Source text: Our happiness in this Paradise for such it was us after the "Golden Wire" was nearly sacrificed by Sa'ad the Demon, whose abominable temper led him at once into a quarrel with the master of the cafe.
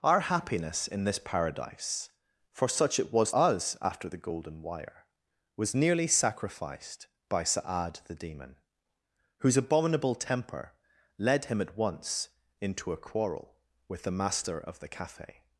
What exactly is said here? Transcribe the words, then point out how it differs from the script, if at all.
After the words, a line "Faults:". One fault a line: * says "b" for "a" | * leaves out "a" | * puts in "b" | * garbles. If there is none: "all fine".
Our happiness in this Paradise for such it was us after the "Golden Wire" was nearly sacrificed by Sa'ad the Demon, whose abominable temper led him at once into a quarrel with the master of the cafe.
Faults:
all fine